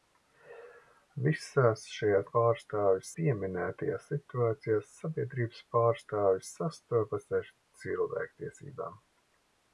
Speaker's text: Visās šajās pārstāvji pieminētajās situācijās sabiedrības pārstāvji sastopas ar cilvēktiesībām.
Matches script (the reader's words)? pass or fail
pass